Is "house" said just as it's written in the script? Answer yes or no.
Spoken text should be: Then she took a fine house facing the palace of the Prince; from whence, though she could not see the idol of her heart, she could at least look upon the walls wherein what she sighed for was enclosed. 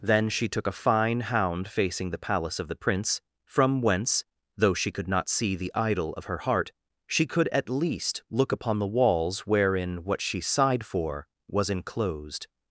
no